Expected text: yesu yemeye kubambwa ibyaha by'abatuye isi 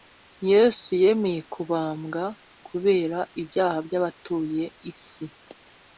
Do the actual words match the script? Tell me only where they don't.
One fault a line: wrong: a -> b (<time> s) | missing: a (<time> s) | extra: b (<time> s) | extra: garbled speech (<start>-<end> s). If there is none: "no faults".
extra: kubera (2.7 s)